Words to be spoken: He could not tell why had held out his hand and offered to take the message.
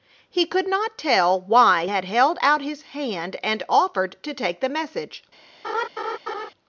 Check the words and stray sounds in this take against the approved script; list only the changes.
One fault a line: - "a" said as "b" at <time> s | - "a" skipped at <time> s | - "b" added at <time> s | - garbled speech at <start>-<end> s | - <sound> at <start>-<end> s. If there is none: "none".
- laugh at 5.6-6.5 s